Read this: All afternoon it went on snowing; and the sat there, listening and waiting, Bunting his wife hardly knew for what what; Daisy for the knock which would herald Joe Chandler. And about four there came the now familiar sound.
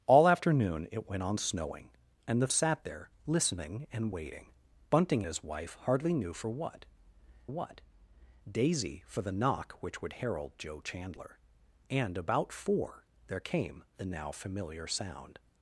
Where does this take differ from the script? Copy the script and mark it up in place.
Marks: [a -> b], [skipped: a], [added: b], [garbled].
All afternoon it went on snowing; and the sat there, listening and waiting, Bunting his wife hardly knew for what what; Daisy for the knock which would herald Joe Chandler. And about four there came the now familiar sound.